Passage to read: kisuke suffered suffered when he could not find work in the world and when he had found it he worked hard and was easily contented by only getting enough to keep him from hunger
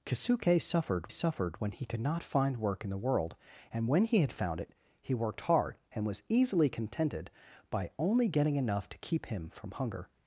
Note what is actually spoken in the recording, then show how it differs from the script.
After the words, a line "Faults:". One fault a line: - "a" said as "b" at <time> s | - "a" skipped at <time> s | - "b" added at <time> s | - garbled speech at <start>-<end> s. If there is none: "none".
kisuke suffered suffered when he could not find work in the world and when he had found it he worked hard and was easily contented by only getting enough to keep him from hunger
Faults:
none